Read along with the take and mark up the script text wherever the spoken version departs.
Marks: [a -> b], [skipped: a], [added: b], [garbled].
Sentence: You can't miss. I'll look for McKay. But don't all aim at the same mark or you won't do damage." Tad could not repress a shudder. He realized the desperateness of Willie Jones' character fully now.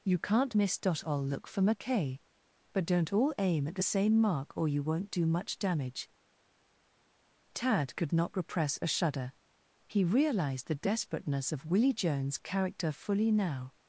You can't miss. I'll look for McKay. But don't all aim at the same mark or you won't do [added: much] damage." Tad could not repress a shudder. He realized the desperateness of Willie Jones' character fully now.